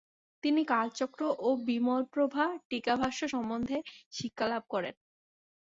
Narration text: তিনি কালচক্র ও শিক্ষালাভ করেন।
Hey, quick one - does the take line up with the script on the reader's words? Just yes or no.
no